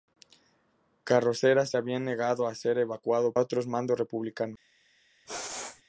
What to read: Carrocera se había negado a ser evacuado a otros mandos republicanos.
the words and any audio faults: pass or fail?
fail